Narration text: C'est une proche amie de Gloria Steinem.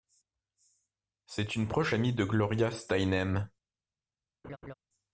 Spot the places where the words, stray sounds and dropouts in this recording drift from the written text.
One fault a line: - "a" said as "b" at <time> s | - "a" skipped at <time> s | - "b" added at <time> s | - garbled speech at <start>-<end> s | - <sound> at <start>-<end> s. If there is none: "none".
- laugh at 4.4-4.7 s